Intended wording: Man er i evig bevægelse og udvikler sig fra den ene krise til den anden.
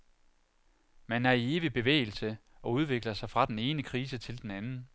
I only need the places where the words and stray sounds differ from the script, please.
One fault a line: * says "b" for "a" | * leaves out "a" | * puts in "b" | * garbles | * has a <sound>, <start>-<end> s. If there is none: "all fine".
all fine